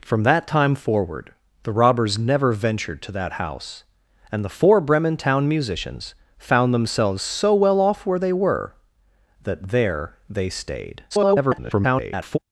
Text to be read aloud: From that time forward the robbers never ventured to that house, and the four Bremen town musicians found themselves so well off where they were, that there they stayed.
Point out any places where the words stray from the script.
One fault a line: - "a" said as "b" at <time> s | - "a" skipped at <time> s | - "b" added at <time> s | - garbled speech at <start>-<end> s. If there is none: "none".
- garbled speech at 11.1-12.4 s